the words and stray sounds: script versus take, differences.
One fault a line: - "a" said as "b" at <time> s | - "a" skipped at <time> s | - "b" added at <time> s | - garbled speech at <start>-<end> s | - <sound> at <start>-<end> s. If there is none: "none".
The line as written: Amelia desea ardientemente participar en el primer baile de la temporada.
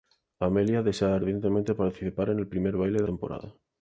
- "la" skipped at 3.1 s